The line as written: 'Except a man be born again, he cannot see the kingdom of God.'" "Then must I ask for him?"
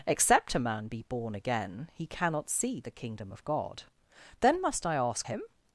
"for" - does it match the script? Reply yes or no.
no